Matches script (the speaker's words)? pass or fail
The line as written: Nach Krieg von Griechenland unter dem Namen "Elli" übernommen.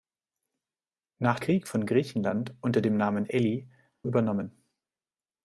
pass